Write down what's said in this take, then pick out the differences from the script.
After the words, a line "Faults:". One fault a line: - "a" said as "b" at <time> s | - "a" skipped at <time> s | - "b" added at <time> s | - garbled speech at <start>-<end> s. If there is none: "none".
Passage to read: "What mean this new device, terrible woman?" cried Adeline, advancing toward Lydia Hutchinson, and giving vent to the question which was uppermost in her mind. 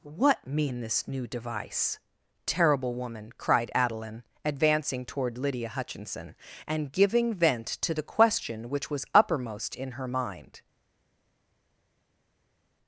"What mean this new device, terrible woman?" cried Adeline, advancing toward Lydia Hutchinson, and giving vent to the question which was uppermost in her mind.
Faults:
none